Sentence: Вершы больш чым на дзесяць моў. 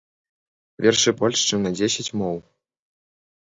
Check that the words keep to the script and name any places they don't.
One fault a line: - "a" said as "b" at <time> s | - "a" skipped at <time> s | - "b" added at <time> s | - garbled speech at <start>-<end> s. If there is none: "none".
none